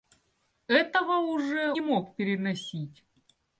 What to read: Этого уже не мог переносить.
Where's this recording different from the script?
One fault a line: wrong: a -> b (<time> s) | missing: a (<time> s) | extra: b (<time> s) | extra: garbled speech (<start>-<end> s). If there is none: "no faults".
no faults